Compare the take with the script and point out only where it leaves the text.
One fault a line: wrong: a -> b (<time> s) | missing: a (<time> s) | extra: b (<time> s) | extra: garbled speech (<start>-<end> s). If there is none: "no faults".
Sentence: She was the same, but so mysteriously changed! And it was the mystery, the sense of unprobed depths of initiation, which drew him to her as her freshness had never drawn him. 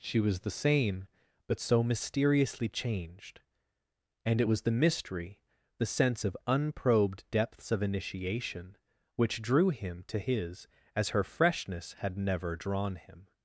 wrong: her -> his (10.2 s)